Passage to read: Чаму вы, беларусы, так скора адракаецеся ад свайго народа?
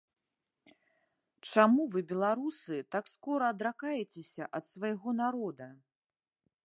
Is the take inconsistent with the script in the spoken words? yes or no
no